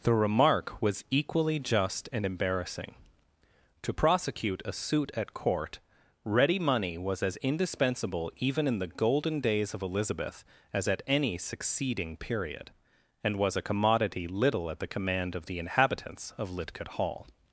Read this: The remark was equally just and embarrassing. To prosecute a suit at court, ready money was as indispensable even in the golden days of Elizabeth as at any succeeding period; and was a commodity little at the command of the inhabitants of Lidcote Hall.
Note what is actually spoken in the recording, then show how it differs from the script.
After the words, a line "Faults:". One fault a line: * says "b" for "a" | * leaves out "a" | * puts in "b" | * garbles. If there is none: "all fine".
The remark was equally just and embarrassing. To prosecute a suit at court, ready money was as indispensable even in the golden days of Elizabeth as at any succeeding period; and was a commodity little at the command of the inhabitants of Lidcote Hall.
Faults:
all fine